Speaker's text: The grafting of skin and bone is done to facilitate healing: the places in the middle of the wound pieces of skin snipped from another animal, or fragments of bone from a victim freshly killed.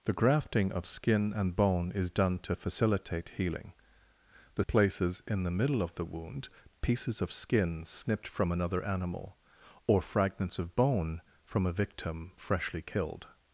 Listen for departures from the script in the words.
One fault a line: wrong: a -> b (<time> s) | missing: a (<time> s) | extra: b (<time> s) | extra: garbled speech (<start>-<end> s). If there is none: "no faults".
no faults